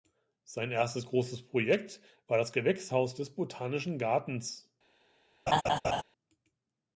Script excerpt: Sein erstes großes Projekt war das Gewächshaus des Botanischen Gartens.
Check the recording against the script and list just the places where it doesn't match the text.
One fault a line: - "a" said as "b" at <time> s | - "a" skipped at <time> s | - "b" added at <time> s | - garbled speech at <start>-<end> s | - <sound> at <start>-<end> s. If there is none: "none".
- laugh at 5.5-6.0 s